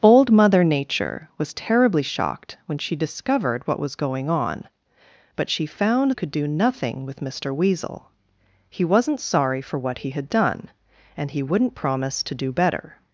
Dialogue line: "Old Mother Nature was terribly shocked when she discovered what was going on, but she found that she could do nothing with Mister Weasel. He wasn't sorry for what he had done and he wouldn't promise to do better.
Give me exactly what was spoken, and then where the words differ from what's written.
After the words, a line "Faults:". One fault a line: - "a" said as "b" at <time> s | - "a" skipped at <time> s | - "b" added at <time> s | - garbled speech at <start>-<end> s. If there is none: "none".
"Old Mother Nature was terribly shocked when she discovered what was going on, but she found could do nothing with Mister Weasel. He wasn't sorry for what he had done and he wouldn't promise to do better.
Faults:
- "that she" skipped at 6.1 s